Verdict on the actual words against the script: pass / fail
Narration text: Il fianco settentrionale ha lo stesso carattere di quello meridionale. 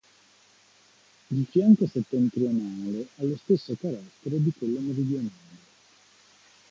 pass